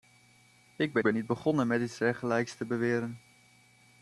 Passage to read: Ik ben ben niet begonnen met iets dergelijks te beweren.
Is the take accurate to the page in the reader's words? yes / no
yes